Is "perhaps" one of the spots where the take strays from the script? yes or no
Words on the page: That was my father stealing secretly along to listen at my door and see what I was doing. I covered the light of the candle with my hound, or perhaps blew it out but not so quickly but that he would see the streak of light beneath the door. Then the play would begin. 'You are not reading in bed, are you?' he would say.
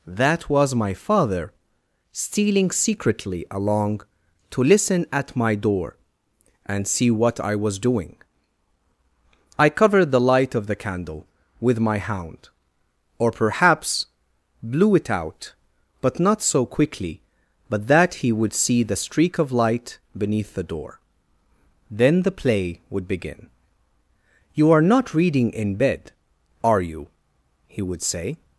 no